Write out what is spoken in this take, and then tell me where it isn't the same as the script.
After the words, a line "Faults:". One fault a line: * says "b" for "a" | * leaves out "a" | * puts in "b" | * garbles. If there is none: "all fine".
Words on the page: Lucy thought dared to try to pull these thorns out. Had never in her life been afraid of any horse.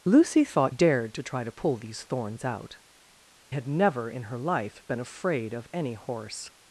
Lucy thought dared to try to pull these thorns out. Had never in her life been afraid of any horse.
Faults:
all fine